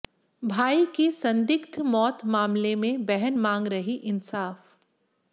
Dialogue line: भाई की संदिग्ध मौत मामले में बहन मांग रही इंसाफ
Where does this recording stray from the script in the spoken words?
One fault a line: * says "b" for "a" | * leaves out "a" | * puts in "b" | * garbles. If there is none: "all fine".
all fine